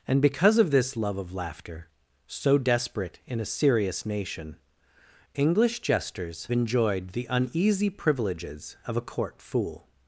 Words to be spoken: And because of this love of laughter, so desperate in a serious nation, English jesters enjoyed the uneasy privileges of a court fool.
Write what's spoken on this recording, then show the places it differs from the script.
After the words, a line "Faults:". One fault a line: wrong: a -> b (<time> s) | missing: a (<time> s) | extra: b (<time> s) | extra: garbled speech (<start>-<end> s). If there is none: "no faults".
And because of this love of laughter, so desperate in a serious nation, English jesters enjoyed the uneasy privileges of a court fool.
Faults:
no faults